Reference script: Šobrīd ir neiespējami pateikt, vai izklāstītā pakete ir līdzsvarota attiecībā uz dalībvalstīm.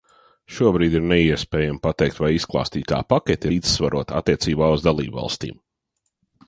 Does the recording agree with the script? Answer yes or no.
no